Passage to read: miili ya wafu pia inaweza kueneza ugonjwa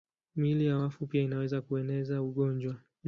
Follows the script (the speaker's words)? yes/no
yes